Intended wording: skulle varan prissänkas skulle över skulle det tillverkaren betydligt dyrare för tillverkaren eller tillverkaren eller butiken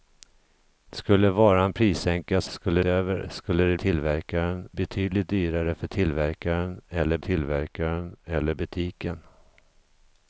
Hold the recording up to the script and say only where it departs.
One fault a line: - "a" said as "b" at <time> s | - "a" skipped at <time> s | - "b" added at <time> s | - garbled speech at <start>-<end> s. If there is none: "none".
none